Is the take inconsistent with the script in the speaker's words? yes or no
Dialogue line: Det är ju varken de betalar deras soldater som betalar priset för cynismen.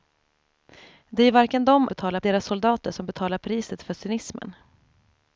no